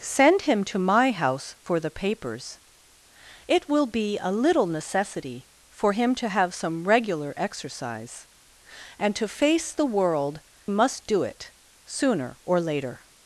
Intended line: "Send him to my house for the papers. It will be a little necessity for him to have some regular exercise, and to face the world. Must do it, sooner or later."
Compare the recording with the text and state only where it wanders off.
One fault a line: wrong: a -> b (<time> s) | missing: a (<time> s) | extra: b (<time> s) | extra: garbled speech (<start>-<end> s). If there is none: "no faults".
no faults